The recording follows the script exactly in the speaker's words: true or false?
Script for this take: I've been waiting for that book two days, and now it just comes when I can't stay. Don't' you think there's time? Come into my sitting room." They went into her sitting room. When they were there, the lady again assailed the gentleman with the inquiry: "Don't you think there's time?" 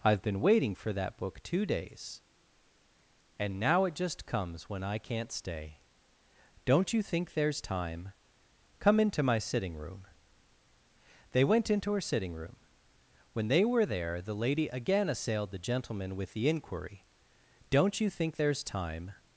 true